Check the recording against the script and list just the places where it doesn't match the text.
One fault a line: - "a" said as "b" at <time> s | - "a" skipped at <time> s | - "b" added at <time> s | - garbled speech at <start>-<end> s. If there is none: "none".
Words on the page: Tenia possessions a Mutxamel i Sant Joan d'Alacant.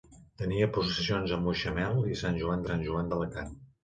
- "Sant Joan" added at 2.7 s